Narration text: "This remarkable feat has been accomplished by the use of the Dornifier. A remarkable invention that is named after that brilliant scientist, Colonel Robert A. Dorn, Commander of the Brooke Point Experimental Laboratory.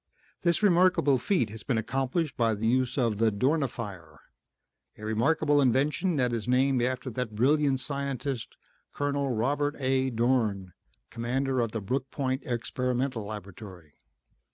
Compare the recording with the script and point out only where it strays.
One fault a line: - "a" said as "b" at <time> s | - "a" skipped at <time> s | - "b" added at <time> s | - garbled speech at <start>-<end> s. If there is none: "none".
none